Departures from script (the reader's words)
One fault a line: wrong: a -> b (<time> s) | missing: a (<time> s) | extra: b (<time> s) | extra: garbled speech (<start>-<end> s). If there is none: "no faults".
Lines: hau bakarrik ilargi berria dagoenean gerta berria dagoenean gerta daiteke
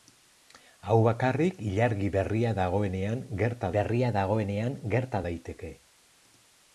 no faults